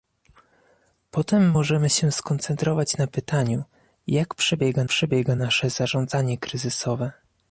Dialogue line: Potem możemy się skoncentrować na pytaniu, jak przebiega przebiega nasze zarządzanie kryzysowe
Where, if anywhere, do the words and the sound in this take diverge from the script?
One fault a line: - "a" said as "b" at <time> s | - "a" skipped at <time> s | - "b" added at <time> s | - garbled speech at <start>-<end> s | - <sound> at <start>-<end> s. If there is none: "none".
none